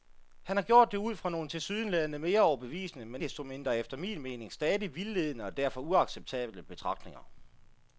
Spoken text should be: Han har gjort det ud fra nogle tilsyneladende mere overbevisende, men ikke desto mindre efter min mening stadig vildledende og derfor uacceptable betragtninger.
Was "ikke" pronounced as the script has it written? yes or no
no